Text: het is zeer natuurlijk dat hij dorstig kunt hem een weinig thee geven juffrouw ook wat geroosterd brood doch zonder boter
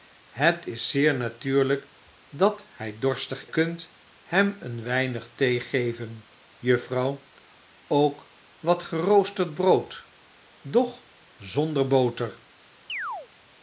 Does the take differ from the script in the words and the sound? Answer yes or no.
yes